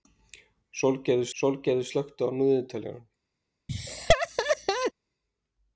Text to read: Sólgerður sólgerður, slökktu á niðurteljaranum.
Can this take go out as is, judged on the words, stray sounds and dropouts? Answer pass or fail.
fail